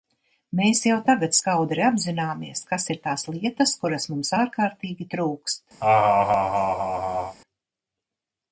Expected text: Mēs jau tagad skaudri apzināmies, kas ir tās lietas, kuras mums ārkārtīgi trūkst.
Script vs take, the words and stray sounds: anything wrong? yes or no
yes